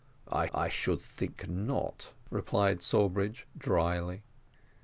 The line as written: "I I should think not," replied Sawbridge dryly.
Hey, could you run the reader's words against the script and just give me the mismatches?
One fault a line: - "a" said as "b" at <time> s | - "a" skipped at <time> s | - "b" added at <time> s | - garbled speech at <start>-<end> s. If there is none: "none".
none